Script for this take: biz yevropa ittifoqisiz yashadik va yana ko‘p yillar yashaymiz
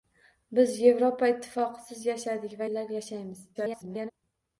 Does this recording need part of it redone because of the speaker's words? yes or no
yes